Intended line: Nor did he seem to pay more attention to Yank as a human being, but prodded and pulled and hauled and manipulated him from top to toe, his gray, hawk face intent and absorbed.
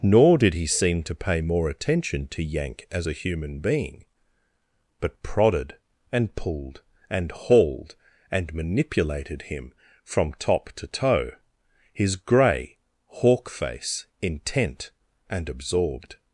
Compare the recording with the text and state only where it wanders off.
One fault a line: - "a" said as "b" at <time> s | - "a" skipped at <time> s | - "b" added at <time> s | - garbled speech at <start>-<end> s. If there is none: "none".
none